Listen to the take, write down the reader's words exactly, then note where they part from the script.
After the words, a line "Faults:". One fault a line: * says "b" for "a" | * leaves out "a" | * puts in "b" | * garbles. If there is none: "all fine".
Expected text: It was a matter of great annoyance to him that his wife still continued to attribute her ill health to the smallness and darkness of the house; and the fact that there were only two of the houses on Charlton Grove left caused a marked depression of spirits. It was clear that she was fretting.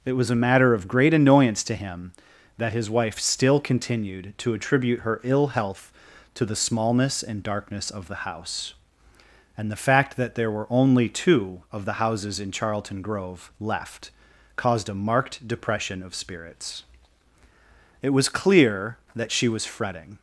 It was a matter of great annoyance to him that his wife still continued to attribute her ill health to the smallness and darkness of the house; and the fact that there were only two of the houses in Charlton Grove left caused a marked depression of spirits. It was clear that she was fretting.
Faults:
* says "in" for "on"